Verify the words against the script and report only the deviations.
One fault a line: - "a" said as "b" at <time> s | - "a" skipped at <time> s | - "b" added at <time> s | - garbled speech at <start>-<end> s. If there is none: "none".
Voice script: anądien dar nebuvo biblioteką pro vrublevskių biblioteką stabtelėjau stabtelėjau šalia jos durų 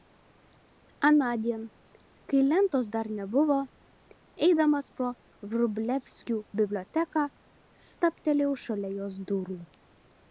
- "kai lentos" added at 2.3 s
- "biblioteką" said as "eidamas" at 4.5 s
- "stabtelėjau" skipped at 8.6 s